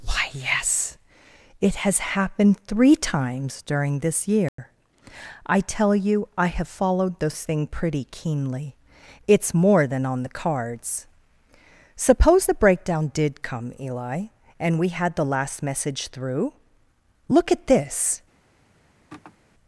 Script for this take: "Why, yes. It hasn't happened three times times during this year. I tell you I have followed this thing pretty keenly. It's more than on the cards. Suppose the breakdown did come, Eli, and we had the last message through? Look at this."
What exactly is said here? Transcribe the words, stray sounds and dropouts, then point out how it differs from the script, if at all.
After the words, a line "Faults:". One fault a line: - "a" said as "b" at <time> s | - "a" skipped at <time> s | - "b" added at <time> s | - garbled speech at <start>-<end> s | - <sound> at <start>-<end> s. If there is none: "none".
"Why, yes. It has happened three times during this year. I tell you I have followed this thing pretty keenly. It's more than on the cards. Suppose the breakdown did come, Eli, and we had the last message through? Look at this."
Faults:
- "hasn't" said as "has" at 1.8 s
- "times" skipped at 3.6 s
- dropout at 4.5-4.6 s
- sigh at 19.1-19.4 s